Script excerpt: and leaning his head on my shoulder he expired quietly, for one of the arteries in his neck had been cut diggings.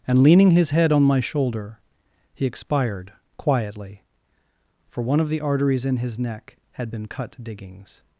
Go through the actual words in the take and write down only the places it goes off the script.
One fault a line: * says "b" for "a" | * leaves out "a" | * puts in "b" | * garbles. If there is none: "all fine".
all fine